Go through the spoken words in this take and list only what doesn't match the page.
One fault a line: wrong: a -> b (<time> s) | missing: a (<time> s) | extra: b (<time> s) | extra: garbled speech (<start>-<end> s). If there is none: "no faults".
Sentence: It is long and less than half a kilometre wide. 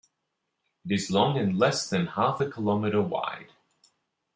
no faults